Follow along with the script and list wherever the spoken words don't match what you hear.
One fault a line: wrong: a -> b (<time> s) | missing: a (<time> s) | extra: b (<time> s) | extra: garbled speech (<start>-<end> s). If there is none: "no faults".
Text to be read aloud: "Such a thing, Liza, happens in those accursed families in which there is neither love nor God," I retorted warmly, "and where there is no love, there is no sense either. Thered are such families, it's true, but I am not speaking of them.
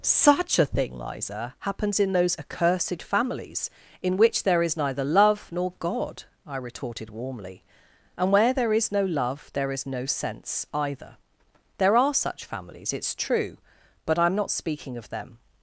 wrong: Thered -> There (11.8 s)